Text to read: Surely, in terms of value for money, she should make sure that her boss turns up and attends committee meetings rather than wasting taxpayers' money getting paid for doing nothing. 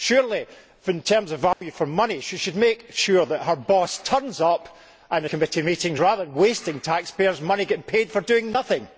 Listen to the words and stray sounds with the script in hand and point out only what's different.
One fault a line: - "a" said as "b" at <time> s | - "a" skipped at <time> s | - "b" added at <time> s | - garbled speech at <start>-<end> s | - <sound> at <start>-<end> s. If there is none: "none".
- dropout at 1.5-1.6 s
- "attends" skipped at 5.2 s